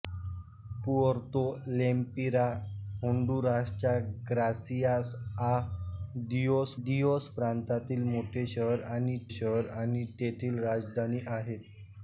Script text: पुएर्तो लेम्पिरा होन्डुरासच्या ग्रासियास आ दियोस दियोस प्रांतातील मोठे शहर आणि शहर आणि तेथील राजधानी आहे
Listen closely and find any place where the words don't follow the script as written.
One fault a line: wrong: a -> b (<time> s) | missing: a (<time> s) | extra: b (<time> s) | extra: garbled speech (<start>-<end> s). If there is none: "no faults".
no faults